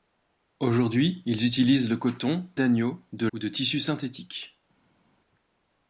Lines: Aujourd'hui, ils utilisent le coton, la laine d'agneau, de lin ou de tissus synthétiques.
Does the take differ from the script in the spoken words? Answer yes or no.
yes